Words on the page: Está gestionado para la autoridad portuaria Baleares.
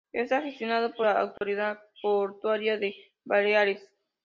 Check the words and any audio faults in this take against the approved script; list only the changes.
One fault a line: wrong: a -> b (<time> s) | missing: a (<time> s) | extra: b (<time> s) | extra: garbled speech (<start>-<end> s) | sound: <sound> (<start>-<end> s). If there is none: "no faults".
wrong: para -> por (0.9 s)
sound: dropout (1.4-1.4 s)
extra: de (2.8 s)